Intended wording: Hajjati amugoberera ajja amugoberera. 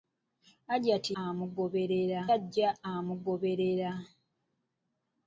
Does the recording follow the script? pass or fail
pass